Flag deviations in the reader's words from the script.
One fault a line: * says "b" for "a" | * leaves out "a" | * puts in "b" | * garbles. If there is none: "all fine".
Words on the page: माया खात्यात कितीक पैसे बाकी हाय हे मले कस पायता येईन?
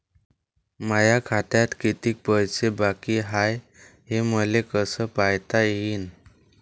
all fine